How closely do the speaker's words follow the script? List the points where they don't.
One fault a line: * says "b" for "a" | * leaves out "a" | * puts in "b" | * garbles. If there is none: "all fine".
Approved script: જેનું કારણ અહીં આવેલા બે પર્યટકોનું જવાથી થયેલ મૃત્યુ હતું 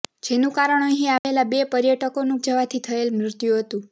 all fine